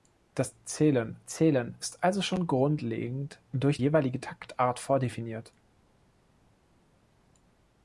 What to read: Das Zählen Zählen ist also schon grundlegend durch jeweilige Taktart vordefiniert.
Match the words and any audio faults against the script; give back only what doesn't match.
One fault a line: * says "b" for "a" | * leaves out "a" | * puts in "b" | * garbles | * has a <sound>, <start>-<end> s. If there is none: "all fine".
all fine